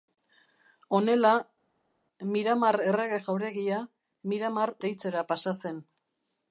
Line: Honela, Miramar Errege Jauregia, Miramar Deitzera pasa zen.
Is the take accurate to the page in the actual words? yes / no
yes